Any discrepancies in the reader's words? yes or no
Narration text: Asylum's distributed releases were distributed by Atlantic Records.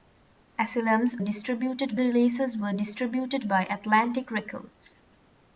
no